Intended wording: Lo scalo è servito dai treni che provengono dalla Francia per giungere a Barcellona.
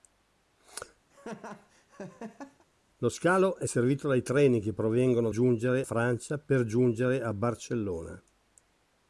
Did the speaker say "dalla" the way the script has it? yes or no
no